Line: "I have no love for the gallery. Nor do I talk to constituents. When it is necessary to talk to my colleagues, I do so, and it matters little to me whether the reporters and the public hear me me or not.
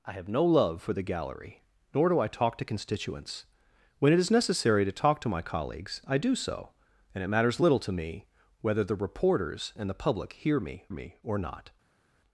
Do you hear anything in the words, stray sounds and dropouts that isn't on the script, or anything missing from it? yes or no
no